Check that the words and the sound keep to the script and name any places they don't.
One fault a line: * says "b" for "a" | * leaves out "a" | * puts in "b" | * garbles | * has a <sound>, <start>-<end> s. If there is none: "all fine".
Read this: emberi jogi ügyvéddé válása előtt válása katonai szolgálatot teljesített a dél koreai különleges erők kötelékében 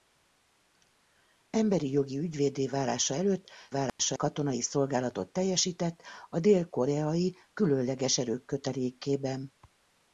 * has a dropout, 3.9-4.0 s